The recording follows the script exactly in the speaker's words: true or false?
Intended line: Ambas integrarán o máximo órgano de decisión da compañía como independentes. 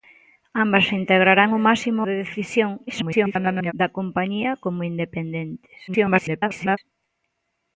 false